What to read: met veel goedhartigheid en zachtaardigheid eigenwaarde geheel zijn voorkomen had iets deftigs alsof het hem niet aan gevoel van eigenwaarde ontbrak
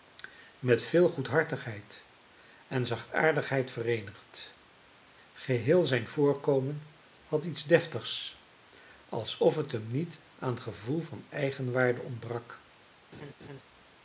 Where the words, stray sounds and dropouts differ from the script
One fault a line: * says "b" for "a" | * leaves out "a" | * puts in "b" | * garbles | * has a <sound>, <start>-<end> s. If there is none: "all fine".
* says "vereenigd" for "eigenwaarde"
* has a laugh, 13.1-13.6 s